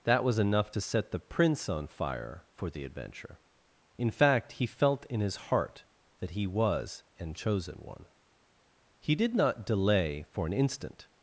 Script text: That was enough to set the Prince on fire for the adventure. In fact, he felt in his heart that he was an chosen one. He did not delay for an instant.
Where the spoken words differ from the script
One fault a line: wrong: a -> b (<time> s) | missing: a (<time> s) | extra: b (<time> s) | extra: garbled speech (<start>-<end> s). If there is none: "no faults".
no faults